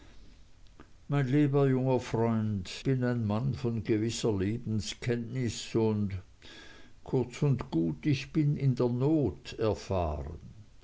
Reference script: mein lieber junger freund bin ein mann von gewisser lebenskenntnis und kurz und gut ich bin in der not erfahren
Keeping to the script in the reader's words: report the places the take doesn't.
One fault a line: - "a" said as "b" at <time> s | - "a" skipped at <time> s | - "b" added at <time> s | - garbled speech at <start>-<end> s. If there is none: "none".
none